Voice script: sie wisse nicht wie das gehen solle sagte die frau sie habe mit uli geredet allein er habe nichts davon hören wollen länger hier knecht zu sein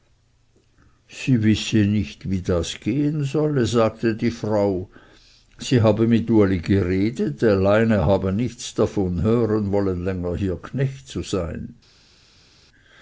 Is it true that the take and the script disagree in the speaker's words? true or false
false